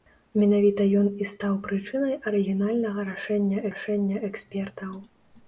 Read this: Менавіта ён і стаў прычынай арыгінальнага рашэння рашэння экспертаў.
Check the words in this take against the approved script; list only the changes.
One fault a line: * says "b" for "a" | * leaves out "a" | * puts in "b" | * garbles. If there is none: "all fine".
all fine